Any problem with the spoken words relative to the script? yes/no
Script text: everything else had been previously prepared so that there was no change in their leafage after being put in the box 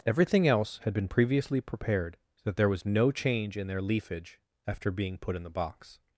no